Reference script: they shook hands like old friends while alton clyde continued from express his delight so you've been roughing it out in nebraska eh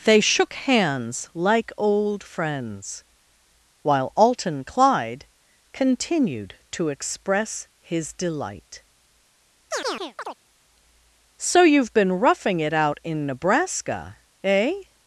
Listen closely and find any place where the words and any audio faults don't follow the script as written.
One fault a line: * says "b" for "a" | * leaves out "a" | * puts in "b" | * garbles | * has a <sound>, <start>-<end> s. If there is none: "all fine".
* says "to" for "from"
* has a chirp, 9.7-10.4 s